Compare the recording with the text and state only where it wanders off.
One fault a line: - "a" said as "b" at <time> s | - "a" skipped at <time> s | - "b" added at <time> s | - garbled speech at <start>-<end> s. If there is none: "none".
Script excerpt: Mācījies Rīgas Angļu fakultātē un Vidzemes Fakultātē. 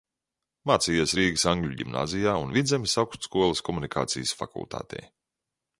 - "fakultātē" said as "ģimnāzijā" at 1.8 s
- "Augstskolas komunikācijas" added at 3.0 s